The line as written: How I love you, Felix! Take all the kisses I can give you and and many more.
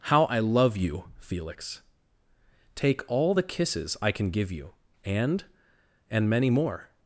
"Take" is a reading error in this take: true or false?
false